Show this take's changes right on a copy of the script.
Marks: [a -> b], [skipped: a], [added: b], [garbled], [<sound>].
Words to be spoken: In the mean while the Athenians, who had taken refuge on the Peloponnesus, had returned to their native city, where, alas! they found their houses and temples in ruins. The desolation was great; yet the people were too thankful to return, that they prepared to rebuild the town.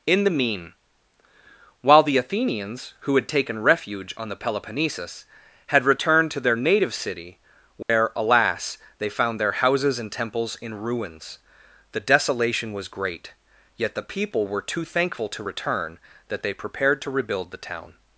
In the mean while the Athenians, who had taken refuge on the Peloponnesus, had returned to their native city, where, [dropout] alas! they found their houses and temples in ruins. The desolation was great; yet the people were too thankful to return, that they prepared to rebuild the town.